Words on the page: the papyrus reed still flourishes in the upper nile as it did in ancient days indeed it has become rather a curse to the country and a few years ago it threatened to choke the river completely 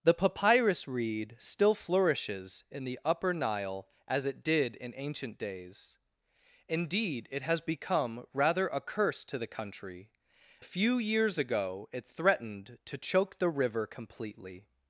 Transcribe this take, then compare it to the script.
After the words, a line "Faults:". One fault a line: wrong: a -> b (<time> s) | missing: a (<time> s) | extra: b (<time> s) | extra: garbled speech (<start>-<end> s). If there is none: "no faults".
the papyrus reed still flourishes in the upper nile as it did in ancient days indeed it has become rather a curse to the country a few years ago it threatened to choke the river completely
Faults:
missing: and (10.1 s)